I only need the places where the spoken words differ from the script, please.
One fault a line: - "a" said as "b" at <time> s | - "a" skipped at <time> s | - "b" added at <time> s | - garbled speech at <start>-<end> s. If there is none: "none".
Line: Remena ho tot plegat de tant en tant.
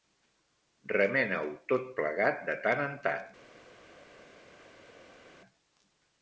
none